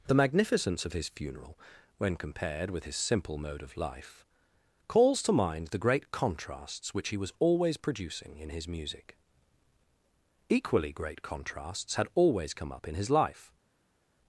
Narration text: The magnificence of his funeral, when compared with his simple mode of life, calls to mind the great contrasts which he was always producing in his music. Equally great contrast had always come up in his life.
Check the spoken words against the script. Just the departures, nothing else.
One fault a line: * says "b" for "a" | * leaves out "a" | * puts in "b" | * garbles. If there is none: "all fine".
* says "contrasts" for "contrast"